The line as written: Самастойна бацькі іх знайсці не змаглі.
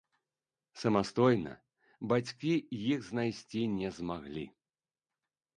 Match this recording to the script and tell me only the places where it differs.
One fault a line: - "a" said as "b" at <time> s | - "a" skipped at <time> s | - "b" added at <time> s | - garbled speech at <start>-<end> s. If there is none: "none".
none